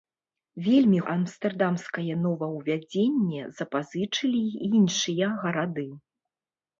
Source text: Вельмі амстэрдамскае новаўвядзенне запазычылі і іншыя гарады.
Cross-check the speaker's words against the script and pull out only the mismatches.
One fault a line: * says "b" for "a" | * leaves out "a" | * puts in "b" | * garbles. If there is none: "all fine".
all fine